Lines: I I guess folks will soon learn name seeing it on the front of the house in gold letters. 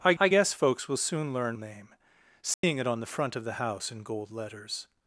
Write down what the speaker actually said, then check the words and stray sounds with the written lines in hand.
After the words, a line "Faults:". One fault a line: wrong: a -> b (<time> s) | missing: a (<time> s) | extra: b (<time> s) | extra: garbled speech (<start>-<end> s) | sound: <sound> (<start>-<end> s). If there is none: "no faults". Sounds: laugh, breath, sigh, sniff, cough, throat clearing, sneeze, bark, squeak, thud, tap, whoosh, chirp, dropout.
I I guess folks will soon learn name seeing it on the front of the house in gold letters.
Faults:
sound: dropout (2.5-2.6 s)